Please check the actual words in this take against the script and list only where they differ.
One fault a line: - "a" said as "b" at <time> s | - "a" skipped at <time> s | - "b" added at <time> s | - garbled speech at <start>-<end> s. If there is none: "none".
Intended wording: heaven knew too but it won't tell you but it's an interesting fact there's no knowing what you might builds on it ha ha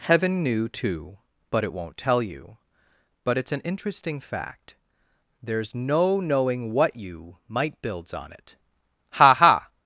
none